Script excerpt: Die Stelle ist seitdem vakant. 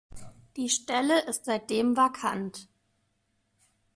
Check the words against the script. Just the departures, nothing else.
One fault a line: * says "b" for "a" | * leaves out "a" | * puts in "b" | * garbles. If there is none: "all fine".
all fine